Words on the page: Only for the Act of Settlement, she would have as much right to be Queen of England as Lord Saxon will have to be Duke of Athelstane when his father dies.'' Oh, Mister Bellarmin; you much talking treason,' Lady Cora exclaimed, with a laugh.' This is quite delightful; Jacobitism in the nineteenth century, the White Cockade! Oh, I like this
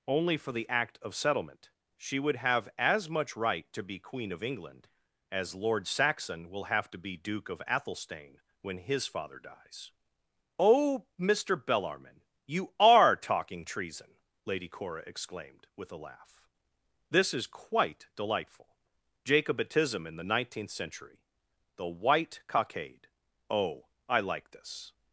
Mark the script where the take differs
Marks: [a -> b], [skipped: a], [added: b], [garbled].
Only for the Act of Settlement, she would have as much right to be Queen of England as Lord Saxon will have to be Duke of Athelstane when his father dies.'' Oh, Mister Bellarmin; you [much -> are] talking treason,' Lady Cora exclaimed, with a laugh.' This is quite delightful; Jacobitism in the nineteenth century, the White Cockade! Oh, I like this